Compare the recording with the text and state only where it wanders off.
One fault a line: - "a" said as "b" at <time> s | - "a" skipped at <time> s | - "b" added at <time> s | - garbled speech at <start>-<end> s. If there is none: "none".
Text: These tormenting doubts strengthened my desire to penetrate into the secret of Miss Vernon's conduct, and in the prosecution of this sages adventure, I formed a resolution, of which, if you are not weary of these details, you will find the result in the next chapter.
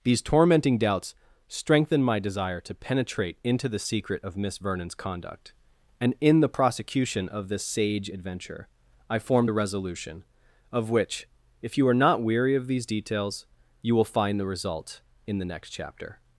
- "sages" said as "sage" at 7.6 s